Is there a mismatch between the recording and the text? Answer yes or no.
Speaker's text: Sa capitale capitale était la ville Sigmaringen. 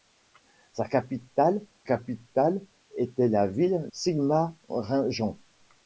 no